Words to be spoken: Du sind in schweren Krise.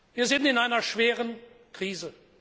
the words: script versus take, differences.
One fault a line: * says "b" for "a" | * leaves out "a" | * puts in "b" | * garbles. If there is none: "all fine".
* says "Wir" for "Du"
* puts in "einer"